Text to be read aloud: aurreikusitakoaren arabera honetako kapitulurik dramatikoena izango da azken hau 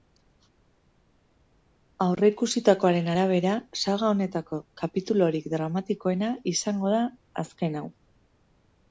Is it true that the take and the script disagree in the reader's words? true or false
true